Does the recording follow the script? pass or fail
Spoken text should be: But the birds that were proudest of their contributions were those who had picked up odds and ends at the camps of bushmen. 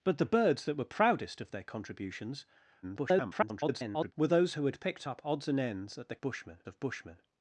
fail